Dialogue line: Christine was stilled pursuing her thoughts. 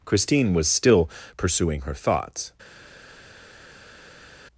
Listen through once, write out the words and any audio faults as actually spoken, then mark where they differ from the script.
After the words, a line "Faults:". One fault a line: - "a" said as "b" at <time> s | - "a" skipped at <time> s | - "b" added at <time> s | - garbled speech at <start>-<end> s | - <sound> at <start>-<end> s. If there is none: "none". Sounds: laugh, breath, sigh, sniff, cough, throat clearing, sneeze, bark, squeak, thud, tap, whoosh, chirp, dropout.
Christine was still pursuing her thoughts.
Faults:
- "stilled" said as "still" at 0.7 s